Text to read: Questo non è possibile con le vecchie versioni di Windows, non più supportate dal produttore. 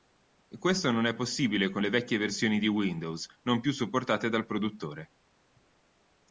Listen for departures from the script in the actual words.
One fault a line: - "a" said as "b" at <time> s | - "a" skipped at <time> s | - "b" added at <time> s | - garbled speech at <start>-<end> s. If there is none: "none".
none